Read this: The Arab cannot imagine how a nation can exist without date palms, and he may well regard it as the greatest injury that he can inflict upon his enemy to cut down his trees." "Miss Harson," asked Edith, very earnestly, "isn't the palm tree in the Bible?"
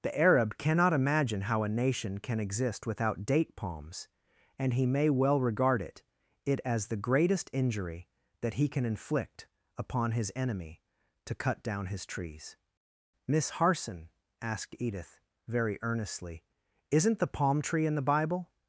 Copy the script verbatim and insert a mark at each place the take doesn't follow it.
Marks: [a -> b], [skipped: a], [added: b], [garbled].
The Arab cannot imagine how a nation can exist without date palms, and he may well regard it [added: it] as the greatest injury that he can inflict upon his enemy to cut down his trees." "Miss Harson," asked Edith, very earnestly, "isn't the palm tree in the Bible?"